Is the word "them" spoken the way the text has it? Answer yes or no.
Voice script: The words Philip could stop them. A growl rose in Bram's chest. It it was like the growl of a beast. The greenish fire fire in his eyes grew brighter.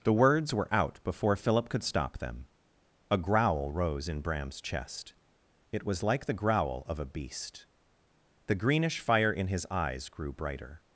yes